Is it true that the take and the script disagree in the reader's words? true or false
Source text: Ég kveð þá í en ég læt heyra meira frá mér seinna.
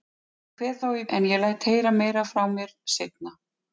false